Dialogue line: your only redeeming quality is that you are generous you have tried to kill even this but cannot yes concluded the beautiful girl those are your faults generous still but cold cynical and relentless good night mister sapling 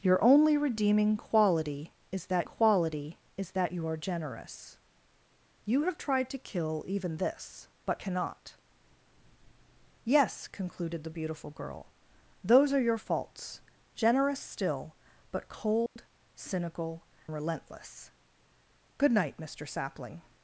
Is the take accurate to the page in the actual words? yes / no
no